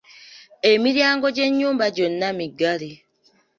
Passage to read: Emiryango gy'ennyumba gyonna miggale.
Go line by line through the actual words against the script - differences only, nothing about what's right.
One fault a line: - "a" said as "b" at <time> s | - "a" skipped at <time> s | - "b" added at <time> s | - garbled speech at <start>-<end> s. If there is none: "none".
none